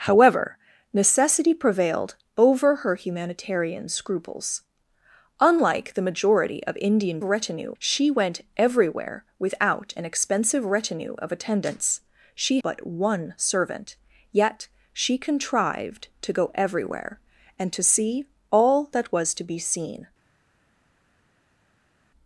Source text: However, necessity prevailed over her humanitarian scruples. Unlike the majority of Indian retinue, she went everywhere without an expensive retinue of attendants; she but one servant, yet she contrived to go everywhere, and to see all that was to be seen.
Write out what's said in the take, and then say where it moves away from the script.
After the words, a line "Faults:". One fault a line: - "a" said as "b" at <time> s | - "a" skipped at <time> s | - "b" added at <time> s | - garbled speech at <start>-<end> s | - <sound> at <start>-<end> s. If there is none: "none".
However, necessity prevailed over her humanitarian scruples. Unlike the majority of Indian retinue, she went everywhere without an expensive retinue of attendants; she but one servant, yet she contrived to go everywhere, and to see all that was to be seen.
Faults:
none